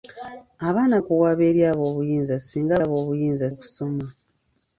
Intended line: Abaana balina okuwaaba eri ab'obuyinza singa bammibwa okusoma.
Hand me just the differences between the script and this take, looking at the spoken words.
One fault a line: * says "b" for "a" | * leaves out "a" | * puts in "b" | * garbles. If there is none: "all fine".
* leaves out "balina"
* says "ab'obuyinza" for "bammibwa"